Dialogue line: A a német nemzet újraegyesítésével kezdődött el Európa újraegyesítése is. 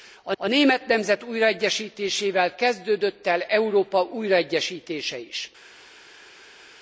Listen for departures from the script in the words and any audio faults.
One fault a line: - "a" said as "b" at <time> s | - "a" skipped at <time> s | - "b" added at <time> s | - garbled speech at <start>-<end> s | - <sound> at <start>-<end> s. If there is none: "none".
none